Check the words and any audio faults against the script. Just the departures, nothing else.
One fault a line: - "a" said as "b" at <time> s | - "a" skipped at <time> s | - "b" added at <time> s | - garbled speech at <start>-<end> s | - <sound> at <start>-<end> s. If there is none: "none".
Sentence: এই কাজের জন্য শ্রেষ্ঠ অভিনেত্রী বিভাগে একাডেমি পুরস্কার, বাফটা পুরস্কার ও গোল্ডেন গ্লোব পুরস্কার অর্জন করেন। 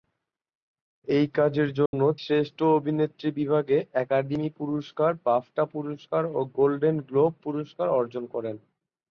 - dropout at 1.9-1.9 s